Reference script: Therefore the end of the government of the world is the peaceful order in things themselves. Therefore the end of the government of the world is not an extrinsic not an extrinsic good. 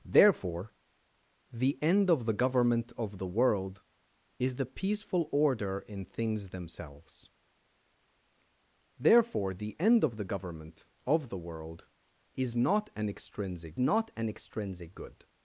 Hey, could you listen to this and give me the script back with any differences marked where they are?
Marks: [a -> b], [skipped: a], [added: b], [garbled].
Therefore the end of the government of the world is the peaceful order in things themselves. Therefore the end of the government of the world is not an extrinsic not an extrinsic good.